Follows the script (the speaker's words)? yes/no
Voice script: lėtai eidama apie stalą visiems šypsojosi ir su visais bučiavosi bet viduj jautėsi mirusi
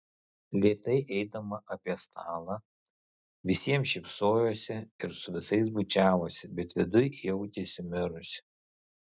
yes